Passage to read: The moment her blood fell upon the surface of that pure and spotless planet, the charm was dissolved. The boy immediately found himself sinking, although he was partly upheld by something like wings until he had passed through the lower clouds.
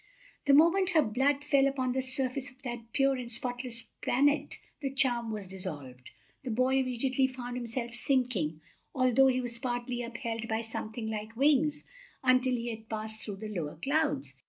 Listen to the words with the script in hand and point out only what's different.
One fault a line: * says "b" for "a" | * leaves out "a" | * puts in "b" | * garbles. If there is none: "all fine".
all fine